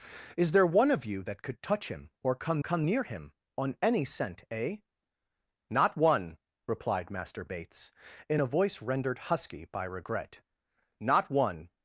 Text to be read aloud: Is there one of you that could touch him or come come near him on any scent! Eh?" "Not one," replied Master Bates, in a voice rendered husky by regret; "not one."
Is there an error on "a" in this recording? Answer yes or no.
no